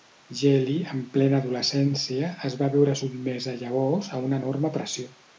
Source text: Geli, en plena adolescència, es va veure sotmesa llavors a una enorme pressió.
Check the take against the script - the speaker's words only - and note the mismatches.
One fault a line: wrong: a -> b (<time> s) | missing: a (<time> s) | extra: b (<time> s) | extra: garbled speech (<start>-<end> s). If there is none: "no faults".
no faults